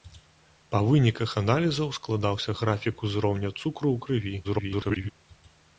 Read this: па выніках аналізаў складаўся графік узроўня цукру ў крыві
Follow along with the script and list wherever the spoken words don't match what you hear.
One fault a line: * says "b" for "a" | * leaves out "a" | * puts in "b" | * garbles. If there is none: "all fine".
* garbles